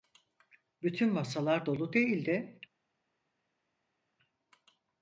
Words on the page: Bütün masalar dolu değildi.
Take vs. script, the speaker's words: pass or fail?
pass